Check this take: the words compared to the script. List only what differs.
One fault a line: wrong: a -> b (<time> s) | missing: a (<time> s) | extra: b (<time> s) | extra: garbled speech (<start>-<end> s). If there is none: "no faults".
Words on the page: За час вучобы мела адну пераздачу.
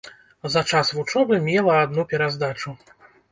no faults